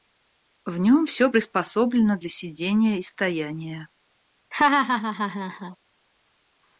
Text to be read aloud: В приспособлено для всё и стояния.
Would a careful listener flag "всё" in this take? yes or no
yes